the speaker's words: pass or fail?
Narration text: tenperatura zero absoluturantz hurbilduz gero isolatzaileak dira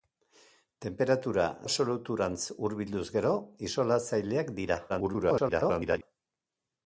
fail